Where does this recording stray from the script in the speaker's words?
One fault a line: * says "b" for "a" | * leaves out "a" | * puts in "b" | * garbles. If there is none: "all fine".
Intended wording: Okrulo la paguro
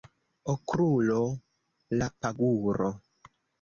all fine